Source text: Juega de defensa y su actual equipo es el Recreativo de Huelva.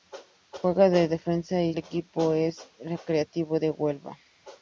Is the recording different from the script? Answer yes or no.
yes